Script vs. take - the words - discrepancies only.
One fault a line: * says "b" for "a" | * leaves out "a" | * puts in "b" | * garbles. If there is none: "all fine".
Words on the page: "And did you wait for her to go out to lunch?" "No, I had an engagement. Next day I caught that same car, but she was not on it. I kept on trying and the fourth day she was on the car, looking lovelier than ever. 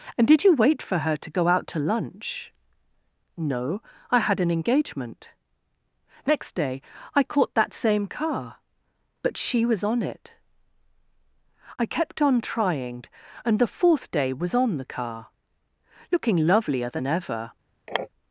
* leaves out "not"
* leaves out "she"